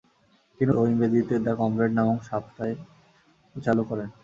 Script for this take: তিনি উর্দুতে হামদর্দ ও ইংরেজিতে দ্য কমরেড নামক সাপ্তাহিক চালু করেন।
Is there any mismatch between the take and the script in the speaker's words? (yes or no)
yes